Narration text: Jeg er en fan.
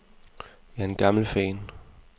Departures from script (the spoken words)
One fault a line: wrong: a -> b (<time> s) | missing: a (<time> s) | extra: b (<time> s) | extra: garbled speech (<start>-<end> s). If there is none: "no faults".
extra: gammel (0.9 s)